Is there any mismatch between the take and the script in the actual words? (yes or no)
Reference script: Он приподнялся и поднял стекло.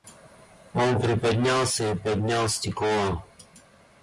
no